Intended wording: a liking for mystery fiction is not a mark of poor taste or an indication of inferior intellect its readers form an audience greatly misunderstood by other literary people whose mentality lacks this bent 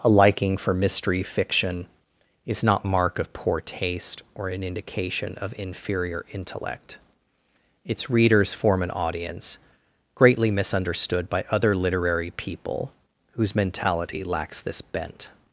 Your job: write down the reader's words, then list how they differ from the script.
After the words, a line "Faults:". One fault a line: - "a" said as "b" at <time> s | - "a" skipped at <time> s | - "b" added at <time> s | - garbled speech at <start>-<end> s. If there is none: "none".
a liking for mystery fiction is not mark of poor taste or an indication of inferior intellect its readers form an audience greatly misunderstood by other literary people whose mentality lacks this bent
Faults:
- "a" skipped at 2.9 s